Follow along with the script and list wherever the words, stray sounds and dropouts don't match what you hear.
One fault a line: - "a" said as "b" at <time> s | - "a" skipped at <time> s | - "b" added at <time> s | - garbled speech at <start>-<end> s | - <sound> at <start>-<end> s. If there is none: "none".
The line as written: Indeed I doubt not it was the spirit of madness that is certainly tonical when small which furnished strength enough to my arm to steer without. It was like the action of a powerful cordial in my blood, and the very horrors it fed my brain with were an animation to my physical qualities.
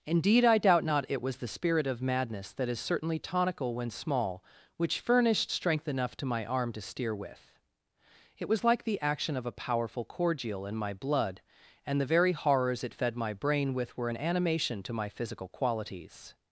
- "without" said as "with" at 7.1 s